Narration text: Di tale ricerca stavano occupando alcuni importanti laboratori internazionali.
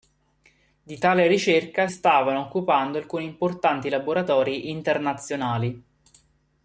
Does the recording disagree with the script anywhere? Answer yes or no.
no